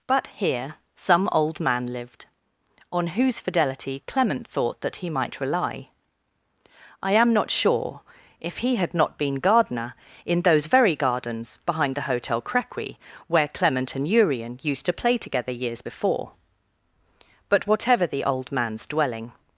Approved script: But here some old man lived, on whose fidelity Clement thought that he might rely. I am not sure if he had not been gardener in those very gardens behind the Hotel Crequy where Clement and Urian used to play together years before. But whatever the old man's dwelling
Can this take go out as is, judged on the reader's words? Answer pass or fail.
pass